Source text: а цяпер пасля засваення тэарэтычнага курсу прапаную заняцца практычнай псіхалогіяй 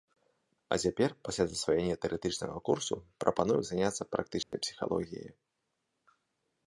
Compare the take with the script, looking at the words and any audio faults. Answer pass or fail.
fail